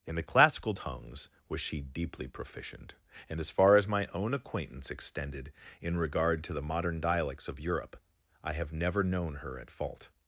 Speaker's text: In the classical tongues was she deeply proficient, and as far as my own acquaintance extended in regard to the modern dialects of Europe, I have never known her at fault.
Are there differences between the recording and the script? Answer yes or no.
no